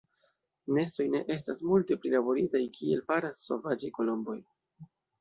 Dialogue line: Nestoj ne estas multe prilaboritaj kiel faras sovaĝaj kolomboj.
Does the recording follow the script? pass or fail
pass